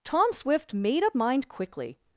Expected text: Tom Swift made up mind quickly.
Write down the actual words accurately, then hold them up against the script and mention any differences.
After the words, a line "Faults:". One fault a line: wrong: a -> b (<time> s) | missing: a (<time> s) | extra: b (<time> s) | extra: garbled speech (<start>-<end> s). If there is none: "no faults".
Tom Swift made up mind quickly.
Faults:
no faults